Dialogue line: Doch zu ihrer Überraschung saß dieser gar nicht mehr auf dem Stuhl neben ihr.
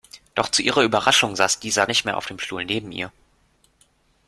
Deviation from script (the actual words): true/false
true